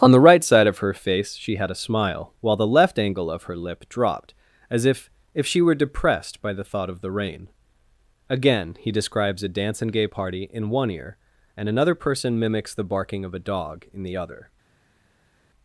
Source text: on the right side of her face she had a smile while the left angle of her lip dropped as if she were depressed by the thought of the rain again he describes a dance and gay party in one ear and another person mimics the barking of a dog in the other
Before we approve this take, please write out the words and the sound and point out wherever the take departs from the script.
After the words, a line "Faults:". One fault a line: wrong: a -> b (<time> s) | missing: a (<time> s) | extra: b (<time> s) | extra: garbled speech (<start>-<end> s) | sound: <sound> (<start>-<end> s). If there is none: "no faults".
on the right side of her face she had a smile while the left angle of her lip dropped as if if she were depressed by the thought of the rain again he describes a dance and gay party in one ear and another person mimics the barking of a dog in the other
Faults:
extra: if (5.3 s)